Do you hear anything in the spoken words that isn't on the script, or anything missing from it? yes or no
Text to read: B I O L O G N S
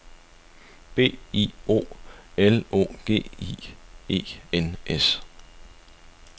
yes